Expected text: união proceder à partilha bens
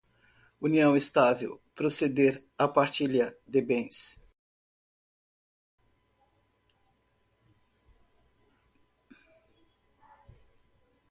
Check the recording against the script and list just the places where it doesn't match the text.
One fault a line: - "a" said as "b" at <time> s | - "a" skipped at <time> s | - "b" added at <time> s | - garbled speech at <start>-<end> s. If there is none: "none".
- "estável" added at 0.9 s
- "de" added at 3.5 s